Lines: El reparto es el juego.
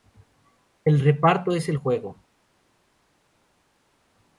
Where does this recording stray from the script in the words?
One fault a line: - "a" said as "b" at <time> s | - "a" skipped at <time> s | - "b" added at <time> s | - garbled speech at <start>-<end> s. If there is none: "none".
none